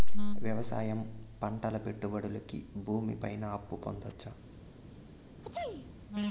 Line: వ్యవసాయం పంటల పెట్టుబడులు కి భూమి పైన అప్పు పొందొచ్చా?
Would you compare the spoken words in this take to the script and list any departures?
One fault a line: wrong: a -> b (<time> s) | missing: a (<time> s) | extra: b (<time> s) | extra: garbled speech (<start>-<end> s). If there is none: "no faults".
no faults